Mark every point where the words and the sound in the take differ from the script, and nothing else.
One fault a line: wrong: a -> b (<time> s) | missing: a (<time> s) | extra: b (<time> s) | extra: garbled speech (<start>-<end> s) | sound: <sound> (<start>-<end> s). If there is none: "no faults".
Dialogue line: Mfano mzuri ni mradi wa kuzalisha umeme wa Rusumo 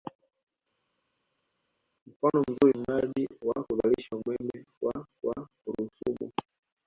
missing: ni (2.7 s)
extra: wa (5.2 s)